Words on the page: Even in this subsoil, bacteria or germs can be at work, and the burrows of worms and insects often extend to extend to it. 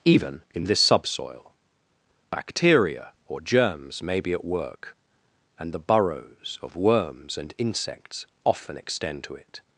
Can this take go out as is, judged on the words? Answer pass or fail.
fail